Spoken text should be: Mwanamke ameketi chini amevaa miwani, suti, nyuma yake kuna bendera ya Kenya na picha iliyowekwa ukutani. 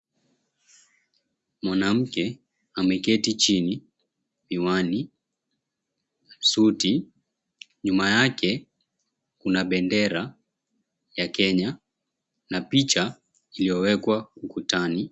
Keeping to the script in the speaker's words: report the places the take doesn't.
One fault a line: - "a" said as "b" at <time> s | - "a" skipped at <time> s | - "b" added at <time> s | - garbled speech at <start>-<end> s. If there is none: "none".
- "amevaa" skipped at 3.8 s